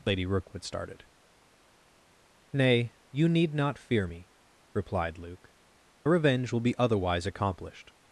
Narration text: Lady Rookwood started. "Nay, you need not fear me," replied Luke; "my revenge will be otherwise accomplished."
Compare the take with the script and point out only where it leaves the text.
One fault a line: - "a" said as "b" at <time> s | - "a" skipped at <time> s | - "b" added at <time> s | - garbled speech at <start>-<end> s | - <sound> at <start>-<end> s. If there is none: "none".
- "my" skipped at 5.5 s